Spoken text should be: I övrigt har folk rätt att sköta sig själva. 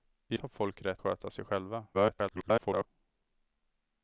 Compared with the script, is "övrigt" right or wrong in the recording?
wrong